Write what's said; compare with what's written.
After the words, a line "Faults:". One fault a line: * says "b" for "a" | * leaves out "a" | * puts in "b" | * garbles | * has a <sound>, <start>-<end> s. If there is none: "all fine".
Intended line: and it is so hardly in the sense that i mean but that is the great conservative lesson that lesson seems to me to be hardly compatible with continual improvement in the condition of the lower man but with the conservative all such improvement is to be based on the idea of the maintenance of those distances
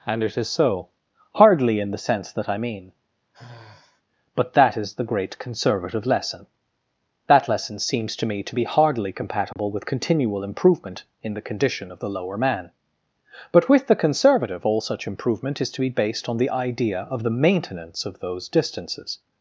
and it is so hardly in the sense that i mean but that is the great conservative lesson that lesson seems to me to be hardly compatible with continual improvement in the condition of the lower man but with the conservative all such improvement is to be based on the idea of the maintenance of those distances
Faults:
* has a sigh, 3.3-4.0 s
* has a dropout, 9.5-9.6 s